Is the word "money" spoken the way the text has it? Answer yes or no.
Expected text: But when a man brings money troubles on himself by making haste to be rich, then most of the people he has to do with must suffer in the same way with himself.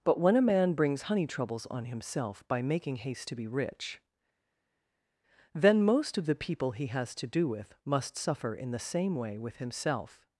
no